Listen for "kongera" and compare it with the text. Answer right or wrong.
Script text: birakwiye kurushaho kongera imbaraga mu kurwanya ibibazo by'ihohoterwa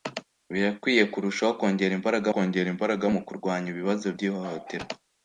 right